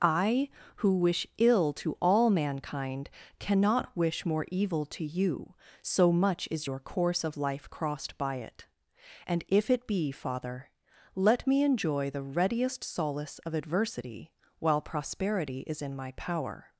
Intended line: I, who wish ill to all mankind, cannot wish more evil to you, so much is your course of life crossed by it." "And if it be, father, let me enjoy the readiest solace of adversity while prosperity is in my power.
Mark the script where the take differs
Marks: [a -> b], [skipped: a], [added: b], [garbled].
I, who wish ill to all mankind, cannot wish more evil to you, so much is your course of life crossed by it." "And if it be, father, let me enjoy the readiest solace of adversity while prosperity is in my power.